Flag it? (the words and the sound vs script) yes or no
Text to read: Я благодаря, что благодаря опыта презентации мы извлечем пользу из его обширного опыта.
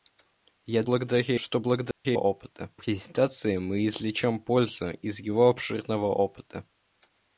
yes